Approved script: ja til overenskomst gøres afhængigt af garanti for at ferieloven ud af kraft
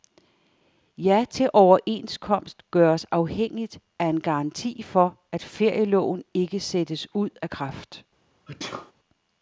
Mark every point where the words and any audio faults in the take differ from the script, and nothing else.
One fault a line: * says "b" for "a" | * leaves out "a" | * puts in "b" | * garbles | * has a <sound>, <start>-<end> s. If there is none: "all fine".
* puts in "en"
* puts in "ikke sættes"
* has a sneeze, 8.5-8.9 s